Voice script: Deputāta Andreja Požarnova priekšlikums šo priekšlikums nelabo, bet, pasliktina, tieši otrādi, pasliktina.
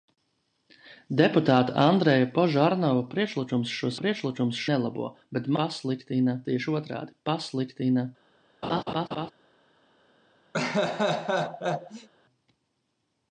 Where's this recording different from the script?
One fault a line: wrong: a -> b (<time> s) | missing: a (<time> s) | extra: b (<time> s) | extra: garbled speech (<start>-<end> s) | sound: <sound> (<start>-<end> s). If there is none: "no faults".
sound: laugh (8.6-9.3 s)
sound: laugh (10.5-12.1 s)